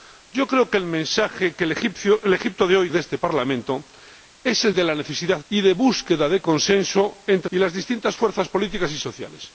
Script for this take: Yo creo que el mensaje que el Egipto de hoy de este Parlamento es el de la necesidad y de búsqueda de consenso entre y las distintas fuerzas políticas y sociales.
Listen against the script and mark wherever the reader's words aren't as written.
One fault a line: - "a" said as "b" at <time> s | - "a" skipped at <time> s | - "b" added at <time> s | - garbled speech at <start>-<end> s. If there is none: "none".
none